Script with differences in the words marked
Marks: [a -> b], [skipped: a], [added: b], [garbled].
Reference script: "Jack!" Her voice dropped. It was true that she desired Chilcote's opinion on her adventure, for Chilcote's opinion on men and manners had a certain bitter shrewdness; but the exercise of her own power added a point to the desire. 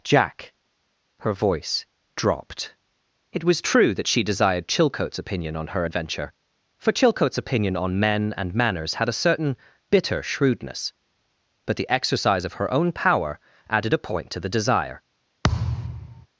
"Jack!" Her voice dropped. It was true that she desired Chilcote's opinion on her adventure, for Chilcote's opinion on men and manners had a certain bitter shrewdness; but the exercise of her own power added a point to the desire.